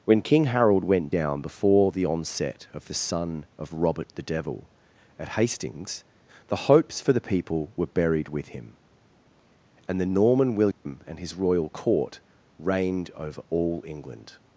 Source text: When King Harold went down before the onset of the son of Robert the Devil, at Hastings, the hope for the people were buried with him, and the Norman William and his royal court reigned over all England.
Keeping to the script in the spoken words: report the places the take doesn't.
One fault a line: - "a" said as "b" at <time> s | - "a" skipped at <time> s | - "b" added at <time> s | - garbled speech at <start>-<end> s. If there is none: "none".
- "hope" said as "hopes" at 6.7 s